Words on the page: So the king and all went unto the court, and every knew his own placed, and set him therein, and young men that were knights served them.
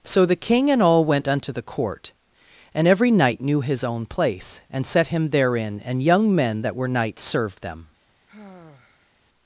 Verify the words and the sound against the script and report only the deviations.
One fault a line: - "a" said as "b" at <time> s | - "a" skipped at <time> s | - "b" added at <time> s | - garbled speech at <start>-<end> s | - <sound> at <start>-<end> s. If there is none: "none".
- "knight" added at 3.1 s
- "placed" said as "place" at 4.1 s
- sigh at 8.3-9.1 s